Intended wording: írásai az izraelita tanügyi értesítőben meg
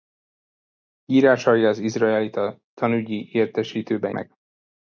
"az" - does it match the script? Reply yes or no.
yes